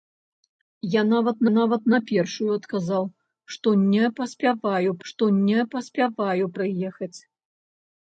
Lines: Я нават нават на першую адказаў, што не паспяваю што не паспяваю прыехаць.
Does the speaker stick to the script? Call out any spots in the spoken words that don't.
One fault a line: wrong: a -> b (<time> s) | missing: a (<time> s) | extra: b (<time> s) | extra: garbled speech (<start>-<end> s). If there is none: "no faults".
no faults